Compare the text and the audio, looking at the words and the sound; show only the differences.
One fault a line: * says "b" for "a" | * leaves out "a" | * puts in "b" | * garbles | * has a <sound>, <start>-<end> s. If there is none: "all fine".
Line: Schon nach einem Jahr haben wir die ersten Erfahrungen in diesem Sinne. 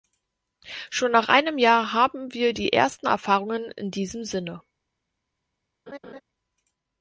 * has a laugh, 5.9-6.2 s